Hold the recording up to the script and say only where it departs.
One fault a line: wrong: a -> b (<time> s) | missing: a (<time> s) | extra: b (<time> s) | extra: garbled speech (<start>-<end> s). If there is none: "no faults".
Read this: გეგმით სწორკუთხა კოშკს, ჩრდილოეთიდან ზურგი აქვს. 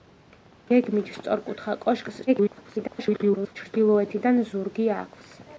extra: garbled speech (2.3-3.6 s)